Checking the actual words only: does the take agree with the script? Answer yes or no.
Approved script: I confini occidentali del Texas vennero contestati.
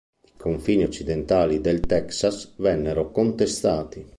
yes